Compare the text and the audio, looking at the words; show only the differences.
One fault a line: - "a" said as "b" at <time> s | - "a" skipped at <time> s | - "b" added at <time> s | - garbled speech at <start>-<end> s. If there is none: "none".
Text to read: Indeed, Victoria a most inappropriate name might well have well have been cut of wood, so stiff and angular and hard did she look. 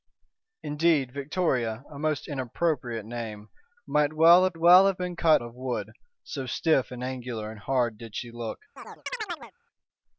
none